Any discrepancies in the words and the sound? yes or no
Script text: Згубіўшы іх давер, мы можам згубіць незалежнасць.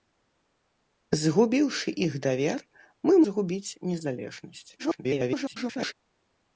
yes